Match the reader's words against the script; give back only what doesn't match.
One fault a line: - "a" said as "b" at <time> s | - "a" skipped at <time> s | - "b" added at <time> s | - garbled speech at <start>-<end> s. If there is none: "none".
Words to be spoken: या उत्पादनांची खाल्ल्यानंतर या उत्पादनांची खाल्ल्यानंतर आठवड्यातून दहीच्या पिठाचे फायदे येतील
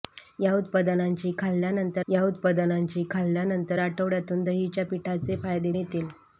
none